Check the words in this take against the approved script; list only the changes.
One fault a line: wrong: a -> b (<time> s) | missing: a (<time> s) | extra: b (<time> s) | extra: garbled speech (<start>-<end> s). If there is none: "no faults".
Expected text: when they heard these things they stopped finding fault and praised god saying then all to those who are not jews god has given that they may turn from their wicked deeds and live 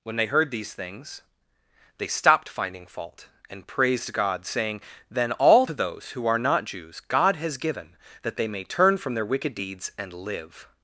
no faults